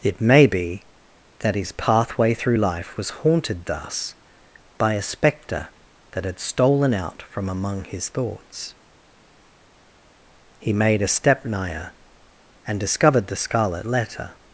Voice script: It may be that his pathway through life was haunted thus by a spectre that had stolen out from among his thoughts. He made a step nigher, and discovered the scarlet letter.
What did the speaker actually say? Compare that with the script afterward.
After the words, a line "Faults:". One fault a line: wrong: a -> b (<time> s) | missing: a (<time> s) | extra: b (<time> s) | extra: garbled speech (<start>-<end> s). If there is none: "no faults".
It may be that his pathway through life was haunted thus by a spectre that had stolen out from among his thoughts. He made a step nigher, and discovered the scarlet letter.
Faults:
no faults